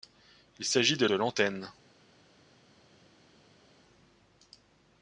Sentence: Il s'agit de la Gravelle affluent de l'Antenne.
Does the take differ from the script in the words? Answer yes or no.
yes